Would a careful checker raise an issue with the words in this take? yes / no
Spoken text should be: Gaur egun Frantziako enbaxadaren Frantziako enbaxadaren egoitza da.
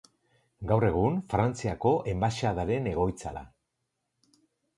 yes